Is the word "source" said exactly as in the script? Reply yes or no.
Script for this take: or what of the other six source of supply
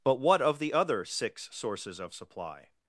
no